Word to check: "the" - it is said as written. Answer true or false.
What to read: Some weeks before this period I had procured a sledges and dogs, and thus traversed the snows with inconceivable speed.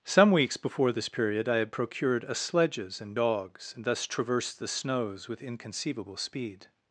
true